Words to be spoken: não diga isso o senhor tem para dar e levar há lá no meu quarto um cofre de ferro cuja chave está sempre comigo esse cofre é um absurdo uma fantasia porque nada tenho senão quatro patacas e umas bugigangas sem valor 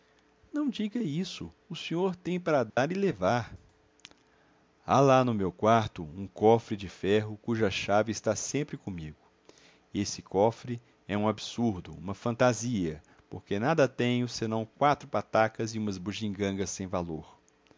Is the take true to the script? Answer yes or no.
yes